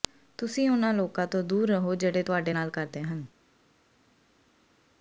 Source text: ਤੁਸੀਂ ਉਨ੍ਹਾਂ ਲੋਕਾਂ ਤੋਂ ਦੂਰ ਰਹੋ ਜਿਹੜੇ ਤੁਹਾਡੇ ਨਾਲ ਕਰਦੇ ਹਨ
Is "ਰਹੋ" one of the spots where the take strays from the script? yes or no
no